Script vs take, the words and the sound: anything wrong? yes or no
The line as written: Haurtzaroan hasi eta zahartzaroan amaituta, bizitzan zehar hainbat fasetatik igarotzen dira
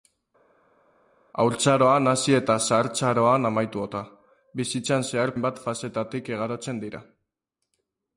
no